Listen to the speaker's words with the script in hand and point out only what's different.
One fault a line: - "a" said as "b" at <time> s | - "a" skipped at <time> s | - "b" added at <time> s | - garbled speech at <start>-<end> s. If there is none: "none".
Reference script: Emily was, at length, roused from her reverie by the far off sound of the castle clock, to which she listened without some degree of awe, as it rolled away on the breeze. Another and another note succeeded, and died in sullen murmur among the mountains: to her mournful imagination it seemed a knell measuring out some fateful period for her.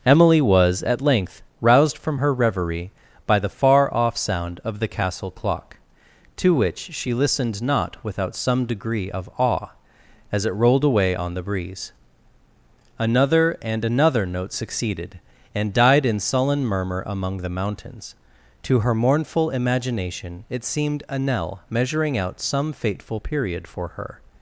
- "not" added at 7.6 s